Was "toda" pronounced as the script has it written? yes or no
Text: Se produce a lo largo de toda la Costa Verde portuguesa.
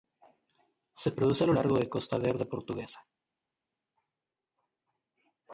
no